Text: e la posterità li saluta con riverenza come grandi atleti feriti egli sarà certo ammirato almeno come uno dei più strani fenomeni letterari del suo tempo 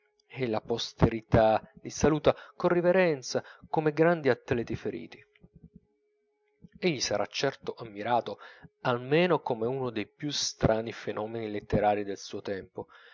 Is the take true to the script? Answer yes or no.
yes